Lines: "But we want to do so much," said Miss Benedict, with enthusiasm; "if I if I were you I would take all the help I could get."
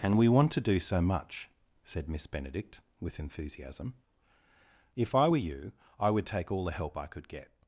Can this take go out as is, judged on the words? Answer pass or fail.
fail